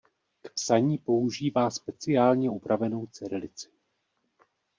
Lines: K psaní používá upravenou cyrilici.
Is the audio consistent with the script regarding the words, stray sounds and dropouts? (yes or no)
no